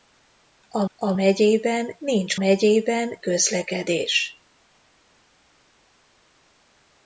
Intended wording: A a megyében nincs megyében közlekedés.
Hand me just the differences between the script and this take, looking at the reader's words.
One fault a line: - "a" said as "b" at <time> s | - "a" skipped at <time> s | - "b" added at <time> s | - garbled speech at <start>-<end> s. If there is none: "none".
none